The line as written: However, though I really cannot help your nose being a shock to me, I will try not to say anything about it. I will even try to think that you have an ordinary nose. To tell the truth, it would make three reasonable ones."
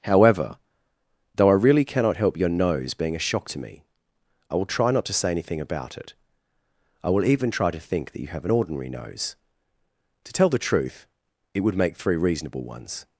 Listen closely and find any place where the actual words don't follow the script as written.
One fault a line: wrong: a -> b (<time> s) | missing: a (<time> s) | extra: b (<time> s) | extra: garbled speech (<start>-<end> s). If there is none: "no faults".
no faults